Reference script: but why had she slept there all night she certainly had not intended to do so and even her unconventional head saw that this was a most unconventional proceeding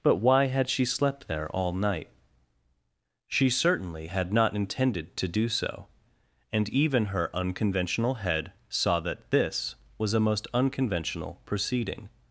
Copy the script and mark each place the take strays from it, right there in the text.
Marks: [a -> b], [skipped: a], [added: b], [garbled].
but why had she slept there all night she certainly had not intended to do so and even her unconventional head saw that this was a most unconventional proceeding